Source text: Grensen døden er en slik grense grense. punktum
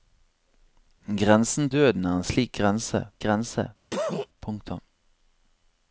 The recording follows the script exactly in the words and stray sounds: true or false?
false